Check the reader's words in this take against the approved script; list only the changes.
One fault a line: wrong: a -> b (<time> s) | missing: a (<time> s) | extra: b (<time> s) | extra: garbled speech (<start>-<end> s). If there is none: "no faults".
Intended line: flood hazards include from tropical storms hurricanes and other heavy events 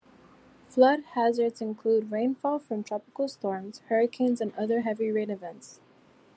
extra: rainfall (2.1 s)
extra: rain (5.1 s)